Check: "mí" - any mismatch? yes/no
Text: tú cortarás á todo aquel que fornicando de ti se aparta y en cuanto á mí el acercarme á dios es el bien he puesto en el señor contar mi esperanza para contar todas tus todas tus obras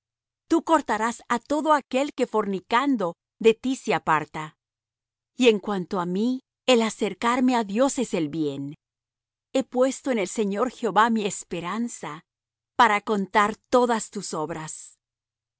no